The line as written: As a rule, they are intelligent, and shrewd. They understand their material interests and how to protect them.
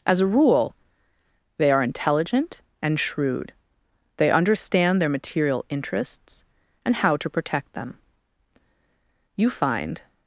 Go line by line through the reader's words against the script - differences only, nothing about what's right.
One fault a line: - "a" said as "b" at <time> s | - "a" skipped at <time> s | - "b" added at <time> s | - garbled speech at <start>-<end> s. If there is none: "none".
- "You find" added at 9.4 s